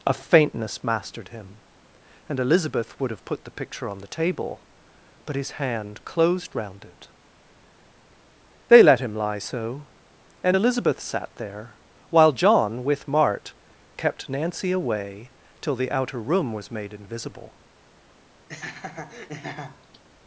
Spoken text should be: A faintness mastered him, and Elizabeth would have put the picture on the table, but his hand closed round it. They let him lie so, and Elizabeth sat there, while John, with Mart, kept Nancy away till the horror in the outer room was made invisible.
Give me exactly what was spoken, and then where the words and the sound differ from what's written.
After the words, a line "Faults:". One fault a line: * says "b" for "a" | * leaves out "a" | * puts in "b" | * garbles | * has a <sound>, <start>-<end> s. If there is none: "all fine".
A faintness mastered him, and Elizabeth would have put the picture on the table, but his hand closed round it. They let him lie so, and Elizabeth sat there, while John, with Mart, kept Nancy away till the outer room was made invisible.
Faults:
* leaves out "horror in the"
* has a laugh, 18.5-20.0 s